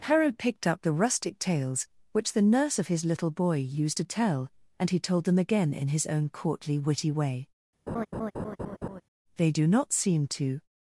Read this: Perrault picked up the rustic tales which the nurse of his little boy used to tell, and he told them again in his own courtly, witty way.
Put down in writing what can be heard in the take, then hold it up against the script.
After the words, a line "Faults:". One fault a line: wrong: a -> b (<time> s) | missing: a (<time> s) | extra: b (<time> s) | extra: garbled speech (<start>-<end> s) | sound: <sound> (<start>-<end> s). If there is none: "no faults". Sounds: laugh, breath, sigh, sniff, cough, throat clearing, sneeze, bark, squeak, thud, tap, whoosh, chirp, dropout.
Perrault picked up the rustic tales which the nurse of his little boy used to tell, and he told them again in his own courtly, witty way. They do not seem to
Faults:
sound: laugh (7.9-9.0 s)
extra: They do not seem to (9.3 s)